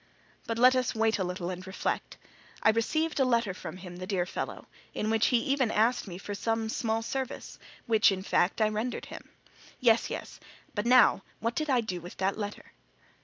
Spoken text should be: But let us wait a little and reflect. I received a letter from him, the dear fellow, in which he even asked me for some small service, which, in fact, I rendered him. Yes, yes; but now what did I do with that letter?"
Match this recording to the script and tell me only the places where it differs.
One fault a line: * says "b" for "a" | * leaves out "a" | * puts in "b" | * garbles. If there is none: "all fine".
all fine